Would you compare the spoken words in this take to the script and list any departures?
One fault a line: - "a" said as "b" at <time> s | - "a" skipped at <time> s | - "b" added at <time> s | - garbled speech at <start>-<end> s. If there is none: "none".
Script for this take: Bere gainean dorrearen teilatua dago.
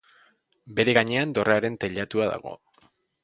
none